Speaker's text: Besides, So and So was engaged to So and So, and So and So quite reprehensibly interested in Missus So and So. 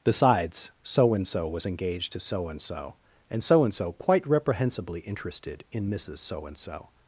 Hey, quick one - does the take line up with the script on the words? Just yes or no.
yes